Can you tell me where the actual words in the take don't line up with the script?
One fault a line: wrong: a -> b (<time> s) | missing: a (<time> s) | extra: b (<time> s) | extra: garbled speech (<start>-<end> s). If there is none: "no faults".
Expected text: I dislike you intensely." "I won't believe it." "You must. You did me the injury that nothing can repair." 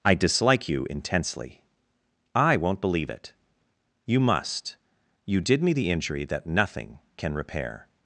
no faults